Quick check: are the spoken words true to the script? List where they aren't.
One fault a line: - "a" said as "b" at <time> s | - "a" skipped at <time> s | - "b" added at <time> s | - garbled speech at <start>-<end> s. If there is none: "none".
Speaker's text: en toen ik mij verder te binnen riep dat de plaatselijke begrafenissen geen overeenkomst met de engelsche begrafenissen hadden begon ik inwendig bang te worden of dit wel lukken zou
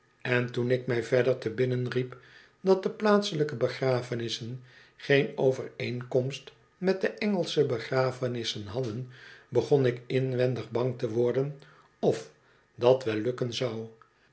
- "dit" said as "dat" at 12.7 s